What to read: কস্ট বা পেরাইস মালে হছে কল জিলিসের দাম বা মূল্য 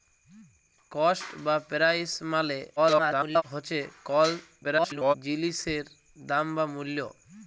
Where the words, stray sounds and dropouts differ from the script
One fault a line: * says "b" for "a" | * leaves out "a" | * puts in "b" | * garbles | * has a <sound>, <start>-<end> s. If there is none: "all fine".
* garbles
* garbles